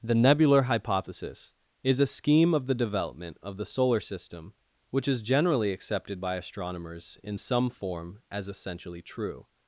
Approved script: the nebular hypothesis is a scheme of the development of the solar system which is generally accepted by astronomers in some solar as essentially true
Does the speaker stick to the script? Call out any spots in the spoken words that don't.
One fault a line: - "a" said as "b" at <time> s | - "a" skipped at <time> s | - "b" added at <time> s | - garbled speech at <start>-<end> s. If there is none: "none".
- "solar" said as "form" at 7.7 s